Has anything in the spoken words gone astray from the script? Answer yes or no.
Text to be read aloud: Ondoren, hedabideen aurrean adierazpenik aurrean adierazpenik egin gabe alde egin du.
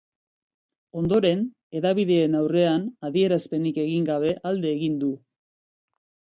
yes